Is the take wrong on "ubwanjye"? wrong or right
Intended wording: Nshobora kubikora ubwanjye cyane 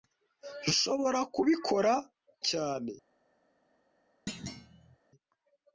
wrong